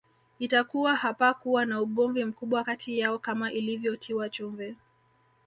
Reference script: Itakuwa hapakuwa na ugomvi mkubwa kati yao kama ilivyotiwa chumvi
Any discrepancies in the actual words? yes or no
no